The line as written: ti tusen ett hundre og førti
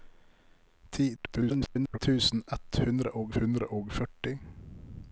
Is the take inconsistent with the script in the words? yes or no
yes